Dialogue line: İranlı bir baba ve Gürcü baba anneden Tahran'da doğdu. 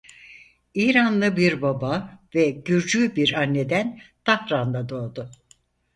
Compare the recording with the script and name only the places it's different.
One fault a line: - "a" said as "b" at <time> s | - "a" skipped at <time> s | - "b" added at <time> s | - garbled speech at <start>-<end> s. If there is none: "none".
- "baba" said as "bir" at 3.1 s